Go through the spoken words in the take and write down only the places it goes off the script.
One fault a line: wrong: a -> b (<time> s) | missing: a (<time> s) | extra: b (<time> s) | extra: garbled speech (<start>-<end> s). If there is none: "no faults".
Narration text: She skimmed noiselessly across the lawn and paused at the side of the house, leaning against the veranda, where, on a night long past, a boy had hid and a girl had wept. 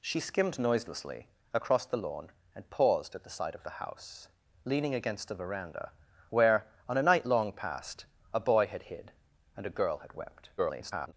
extra: garbled speech (10.6-11.1 s)